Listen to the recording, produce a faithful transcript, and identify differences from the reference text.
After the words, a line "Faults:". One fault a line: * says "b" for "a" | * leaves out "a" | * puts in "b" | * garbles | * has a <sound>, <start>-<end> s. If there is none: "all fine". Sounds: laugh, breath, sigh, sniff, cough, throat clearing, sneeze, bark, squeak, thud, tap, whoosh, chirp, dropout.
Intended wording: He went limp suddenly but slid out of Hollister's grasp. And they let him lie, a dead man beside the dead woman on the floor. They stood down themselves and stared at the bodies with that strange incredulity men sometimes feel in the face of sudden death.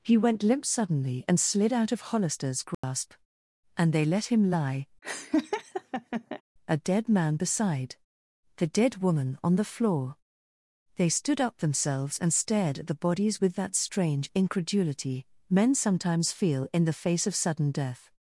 He went limp suddenly and slid out of Hollister's grasp. And they let him lie, a dead man beside the dead woman on the floor. They stood up themselves and stared at the bodies with that strange incredulity men sometimes feel in the face of sudden death.
Faults:
* says "and" for "but"
* has a dropout, 2.7-2.8 s
* has a laugh, 5.0-6.4 s
* says "up" for "down"